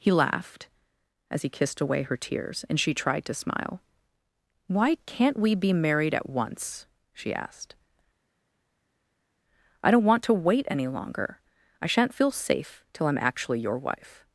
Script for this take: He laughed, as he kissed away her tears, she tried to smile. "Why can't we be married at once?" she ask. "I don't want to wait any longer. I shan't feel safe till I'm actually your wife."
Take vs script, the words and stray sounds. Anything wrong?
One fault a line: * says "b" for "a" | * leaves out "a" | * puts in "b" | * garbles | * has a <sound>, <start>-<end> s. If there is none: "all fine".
* puts in "and"
* says "asked" for "ask"